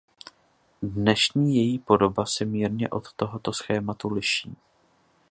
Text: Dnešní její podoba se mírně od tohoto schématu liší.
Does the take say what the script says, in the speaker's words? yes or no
yes